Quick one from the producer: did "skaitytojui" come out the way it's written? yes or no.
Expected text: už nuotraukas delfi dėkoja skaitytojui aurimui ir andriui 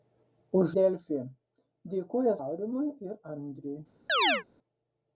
no